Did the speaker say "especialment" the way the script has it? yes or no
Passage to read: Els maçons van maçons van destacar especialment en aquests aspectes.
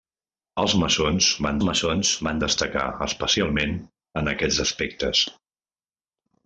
yes